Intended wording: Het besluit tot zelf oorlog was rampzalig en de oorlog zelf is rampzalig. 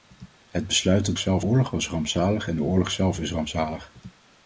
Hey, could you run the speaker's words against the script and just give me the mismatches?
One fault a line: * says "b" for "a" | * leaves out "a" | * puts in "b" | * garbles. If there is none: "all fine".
all fine